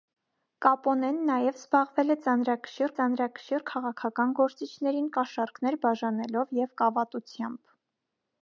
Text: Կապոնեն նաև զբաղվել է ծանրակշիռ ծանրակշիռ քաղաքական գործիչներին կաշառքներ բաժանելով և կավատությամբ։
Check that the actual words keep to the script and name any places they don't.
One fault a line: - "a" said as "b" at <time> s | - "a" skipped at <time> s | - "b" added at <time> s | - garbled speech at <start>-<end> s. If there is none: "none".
none